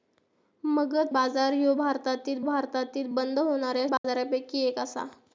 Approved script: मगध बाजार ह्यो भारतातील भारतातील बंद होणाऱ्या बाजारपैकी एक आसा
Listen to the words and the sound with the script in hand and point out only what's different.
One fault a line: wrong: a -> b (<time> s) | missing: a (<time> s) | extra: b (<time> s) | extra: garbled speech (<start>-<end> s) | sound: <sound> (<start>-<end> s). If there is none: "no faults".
sound: dropout (4.0-4.0 s)